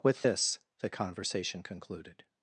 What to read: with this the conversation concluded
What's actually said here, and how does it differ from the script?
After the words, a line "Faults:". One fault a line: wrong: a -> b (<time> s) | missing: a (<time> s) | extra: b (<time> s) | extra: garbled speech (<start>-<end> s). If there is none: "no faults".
with this the conversation concluded
Faults:
no faults